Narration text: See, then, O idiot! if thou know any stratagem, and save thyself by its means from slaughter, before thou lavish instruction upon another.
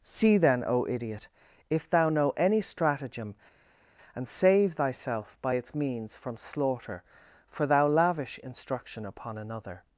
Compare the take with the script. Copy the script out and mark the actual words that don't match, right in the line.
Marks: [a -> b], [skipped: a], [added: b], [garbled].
See, then, O idiot! if thou know any stratagem, and save thyself by its means from slaughter, [before -> for] thou lavish instruction upon another.